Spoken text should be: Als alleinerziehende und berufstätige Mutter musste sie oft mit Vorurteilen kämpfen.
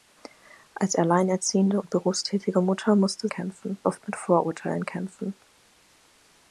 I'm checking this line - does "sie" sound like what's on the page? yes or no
no